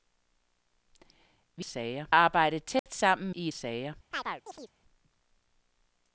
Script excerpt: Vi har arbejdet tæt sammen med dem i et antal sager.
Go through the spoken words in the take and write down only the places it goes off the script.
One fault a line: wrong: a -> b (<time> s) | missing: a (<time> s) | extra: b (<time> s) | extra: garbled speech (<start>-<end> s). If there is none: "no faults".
wrong: har -> sager (1.6 s)
missing: med dem (3.3 s)
missing: antal (3.6 s)